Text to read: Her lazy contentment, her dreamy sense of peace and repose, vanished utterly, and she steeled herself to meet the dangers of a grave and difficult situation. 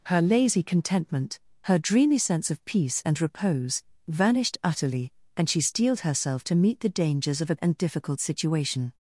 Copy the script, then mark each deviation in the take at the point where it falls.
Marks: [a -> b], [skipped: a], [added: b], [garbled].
Her lazy contentment, her dreamy sense of peace and repose, vanished utterly, and she steeled herself to meet the dangers of a [skipped: grave] and difficult situation.